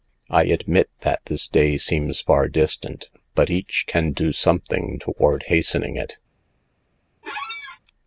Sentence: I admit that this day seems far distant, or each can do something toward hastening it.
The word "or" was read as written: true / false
false